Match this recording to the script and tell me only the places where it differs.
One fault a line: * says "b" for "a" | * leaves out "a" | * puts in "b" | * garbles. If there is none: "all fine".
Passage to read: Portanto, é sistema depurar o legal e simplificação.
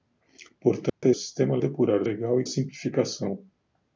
all fine